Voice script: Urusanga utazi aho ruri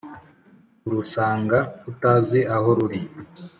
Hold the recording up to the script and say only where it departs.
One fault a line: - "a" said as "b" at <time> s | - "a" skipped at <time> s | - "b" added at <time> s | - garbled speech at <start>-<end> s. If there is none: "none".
none